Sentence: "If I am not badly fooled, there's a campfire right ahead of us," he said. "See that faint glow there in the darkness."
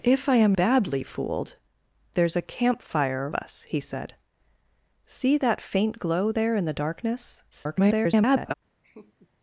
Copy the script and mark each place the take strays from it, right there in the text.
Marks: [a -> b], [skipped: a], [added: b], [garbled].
"If I am [skipped: not] badly fooled, there's a campfire [skipped: right ahead of] us," he said. "See that faint glow there in the darkness." [garbled]